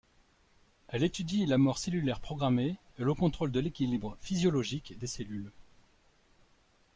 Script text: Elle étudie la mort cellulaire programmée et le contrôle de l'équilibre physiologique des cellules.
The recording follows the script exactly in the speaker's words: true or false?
true